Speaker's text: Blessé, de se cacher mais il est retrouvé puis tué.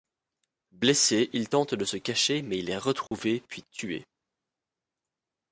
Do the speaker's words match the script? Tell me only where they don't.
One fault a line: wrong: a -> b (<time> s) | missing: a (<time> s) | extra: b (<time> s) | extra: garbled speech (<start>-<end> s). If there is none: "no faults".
extra: il tente (1.3 s)